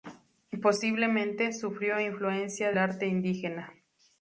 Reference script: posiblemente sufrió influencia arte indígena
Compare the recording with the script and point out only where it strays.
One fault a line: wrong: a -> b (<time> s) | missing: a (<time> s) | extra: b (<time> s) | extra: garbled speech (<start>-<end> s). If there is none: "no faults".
no faults